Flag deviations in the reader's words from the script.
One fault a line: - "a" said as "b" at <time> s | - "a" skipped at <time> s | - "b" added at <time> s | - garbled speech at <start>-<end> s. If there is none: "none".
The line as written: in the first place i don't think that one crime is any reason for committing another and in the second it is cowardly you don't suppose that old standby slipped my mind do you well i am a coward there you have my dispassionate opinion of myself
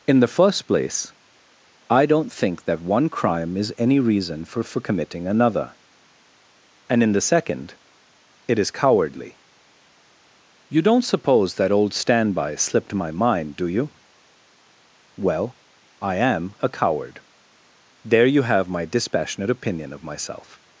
- "for" added at 4.6 s